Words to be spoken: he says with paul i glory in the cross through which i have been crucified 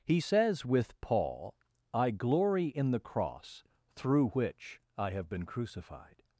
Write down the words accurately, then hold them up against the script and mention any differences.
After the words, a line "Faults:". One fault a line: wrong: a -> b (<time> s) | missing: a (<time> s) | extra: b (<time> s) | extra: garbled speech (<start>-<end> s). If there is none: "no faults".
he says with paul i glory in the cross through which i have been crucified
Faults:
no faults